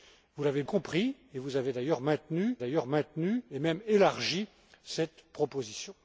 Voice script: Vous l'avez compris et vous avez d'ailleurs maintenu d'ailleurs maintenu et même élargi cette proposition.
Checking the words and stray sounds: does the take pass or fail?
pass